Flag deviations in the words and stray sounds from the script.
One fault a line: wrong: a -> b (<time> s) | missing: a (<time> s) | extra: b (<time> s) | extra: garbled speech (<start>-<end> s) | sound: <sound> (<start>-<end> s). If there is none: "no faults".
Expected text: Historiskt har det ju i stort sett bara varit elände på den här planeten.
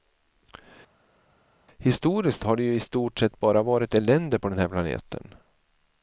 no faults